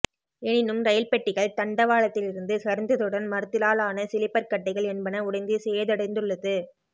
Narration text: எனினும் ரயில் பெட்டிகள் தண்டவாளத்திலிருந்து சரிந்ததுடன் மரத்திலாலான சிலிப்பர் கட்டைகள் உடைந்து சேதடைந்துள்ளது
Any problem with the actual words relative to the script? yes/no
yes